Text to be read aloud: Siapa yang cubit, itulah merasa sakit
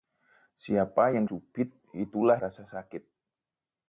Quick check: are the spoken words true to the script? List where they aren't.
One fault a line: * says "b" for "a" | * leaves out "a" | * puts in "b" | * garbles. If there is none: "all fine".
all fine